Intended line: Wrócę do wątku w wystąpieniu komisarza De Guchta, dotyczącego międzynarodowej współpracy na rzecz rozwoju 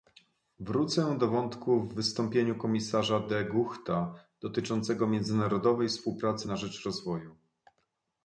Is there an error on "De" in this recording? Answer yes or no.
no